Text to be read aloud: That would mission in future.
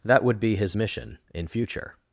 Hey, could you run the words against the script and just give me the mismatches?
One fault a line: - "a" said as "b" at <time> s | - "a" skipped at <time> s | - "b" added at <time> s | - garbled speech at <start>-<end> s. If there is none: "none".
- "be his" added at 0.4 s